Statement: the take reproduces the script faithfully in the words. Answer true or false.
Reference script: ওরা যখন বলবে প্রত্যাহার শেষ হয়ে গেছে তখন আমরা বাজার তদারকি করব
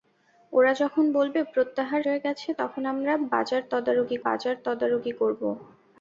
false